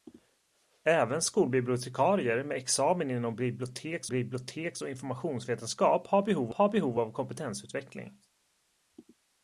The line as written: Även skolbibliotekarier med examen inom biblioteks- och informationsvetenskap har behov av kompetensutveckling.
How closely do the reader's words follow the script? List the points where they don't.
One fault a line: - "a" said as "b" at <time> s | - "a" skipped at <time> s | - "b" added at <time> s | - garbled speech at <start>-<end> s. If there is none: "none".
- "biblioteks" added at 4.1 s
- "har behov" added at 6.5 s